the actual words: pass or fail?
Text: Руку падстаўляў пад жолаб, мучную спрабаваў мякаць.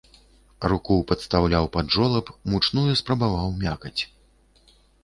pass